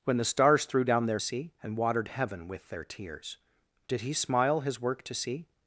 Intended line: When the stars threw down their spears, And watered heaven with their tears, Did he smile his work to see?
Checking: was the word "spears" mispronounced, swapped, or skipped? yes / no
yes